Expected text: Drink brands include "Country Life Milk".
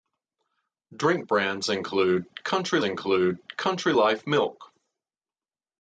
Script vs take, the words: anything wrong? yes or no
yes